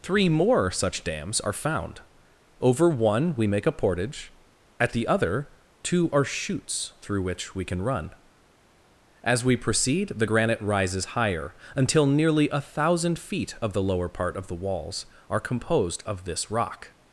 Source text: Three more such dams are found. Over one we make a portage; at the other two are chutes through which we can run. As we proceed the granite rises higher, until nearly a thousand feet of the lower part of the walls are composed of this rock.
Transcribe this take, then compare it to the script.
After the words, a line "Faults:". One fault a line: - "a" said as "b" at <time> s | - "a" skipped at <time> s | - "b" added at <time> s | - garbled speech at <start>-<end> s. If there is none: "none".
Three more such dams are found. Over one we make a portage; at the other two are chutes through which we can run. As we proceed the granite rises higher, until nearly a thousand feet of the lower part of the walls are composed of this rock.
Faults:
none